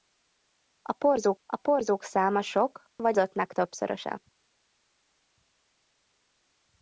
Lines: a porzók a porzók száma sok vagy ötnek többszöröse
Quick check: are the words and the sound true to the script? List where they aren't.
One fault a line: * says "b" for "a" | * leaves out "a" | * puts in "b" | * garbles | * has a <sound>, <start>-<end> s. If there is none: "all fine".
all fine